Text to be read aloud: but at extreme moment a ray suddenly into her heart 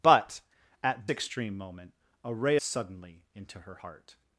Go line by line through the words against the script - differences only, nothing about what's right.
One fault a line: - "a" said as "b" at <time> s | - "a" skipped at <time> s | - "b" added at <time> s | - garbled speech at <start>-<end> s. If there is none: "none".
none